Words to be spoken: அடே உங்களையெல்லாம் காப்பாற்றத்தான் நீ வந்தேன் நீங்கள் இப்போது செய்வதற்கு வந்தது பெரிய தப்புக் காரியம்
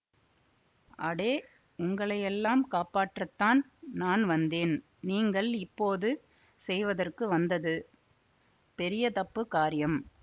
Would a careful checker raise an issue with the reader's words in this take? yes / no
yes